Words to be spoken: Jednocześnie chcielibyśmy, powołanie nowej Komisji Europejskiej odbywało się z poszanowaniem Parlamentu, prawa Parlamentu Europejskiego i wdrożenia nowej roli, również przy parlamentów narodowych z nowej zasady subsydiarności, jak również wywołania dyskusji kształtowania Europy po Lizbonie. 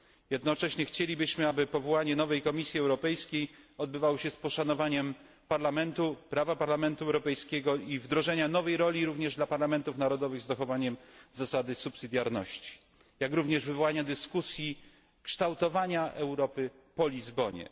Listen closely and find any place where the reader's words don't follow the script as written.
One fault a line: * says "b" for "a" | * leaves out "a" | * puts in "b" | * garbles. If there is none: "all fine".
* puts in "aby"
* says "dla" for "przy"
* says "zachowaniem" for "nowej"